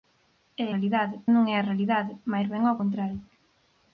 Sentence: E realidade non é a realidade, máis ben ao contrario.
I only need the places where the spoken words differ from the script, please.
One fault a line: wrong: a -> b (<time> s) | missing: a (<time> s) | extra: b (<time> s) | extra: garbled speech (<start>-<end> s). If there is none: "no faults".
no faults